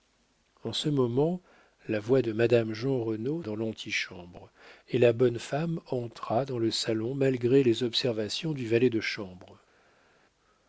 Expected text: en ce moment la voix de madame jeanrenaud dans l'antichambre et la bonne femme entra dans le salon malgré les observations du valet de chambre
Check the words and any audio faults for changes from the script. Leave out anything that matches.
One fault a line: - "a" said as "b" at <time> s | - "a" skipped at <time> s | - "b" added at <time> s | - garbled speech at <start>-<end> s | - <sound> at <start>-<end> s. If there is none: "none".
none